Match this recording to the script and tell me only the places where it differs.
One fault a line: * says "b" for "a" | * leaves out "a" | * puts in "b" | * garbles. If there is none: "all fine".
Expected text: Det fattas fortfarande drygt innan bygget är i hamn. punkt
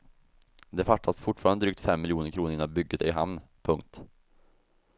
* puts in "fem miljoner kronor"